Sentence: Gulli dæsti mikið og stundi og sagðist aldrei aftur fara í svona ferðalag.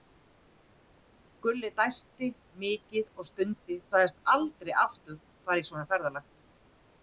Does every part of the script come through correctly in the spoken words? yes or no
no